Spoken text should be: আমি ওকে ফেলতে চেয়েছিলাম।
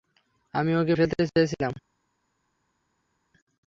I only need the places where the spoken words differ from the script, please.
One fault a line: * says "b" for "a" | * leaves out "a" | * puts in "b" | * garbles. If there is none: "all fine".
all fine